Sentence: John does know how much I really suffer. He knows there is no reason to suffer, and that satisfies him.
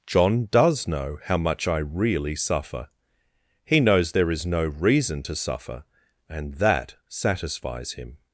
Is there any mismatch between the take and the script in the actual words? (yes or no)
no